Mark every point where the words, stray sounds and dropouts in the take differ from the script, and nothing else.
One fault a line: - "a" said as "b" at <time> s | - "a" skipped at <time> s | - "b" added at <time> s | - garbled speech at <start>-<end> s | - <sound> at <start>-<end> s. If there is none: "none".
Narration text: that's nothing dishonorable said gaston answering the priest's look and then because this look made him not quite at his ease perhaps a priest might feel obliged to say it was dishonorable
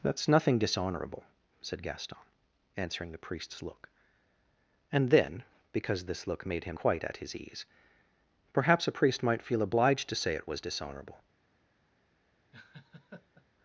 - "not" skipped at 6.8 s
- laugh at 12.5-13.5 s